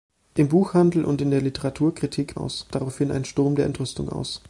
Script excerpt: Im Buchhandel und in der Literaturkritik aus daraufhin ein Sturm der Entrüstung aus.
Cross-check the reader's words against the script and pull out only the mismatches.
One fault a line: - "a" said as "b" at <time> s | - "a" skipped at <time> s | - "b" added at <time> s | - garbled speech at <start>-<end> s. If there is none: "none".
none